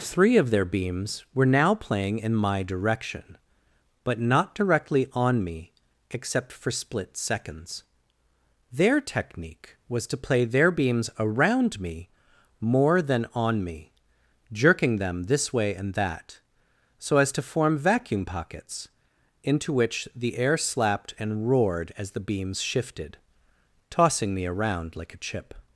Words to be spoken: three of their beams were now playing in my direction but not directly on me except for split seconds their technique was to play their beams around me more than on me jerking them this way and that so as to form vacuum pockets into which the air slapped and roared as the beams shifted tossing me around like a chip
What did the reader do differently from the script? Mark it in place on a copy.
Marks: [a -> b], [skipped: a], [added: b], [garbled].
three of their beams were now playing in my direction but not directly on me except for split seconds their technique was to play their beams around me more than on me jerking them this way and that so as to form vacuum pockets into which the air slapped and roared as the beams shifted tossing me around like a chip